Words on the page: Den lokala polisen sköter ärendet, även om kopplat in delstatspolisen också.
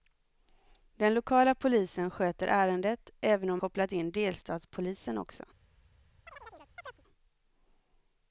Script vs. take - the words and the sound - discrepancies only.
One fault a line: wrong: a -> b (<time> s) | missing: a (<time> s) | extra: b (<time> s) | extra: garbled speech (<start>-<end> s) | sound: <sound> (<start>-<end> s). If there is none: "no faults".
sound: chirp (6.3-7.0 s)